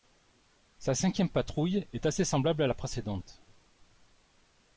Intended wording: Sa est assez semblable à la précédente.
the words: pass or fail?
fail